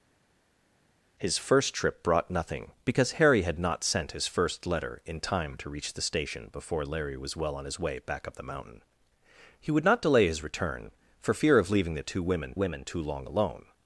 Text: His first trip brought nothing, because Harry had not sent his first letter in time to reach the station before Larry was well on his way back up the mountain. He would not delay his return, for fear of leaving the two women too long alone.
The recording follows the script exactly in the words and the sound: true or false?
false